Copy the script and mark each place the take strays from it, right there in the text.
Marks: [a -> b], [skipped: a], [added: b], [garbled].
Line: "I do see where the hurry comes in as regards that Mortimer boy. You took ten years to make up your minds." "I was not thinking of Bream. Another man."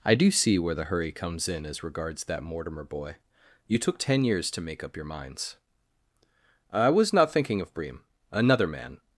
"I do see where the hurry comes in as regards that Mortimer boy. You took ten years to make up your minds." "I was not thinking of Bream. Another man."